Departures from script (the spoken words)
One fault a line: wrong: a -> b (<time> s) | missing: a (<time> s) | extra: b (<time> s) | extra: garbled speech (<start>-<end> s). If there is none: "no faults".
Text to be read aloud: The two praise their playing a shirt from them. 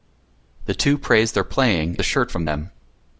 no faults